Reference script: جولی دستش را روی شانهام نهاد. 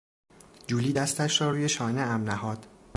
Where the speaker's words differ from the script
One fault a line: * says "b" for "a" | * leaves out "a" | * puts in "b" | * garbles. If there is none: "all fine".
all fine